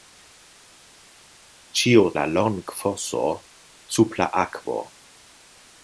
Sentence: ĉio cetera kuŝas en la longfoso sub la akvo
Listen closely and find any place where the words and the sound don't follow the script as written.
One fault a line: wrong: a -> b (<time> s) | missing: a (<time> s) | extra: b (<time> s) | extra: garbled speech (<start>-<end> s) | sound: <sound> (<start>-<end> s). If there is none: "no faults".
missing: cetera kuŝas en (2.0 s)